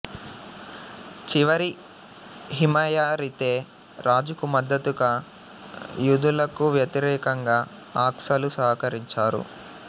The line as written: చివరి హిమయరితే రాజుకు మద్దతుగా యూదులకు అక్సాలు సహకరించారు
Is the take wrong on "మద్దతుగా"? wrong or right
right